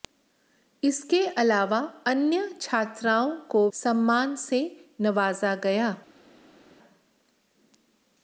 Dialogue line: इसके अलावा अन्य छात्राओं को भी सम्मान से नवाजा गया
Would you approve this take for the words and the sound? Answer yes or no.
no